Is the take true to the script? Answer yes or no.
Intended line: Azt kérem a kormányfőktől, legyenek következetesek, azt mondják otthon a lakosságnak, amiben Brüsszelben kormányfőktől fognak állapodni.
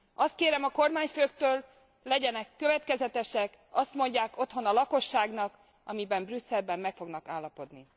no